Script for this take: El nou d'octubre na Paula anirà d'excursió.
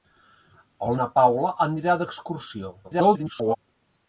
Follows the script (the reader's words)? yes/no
no